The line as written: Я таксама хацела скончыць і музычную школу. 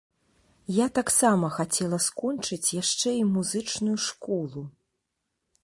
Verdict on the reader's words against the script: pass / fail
fail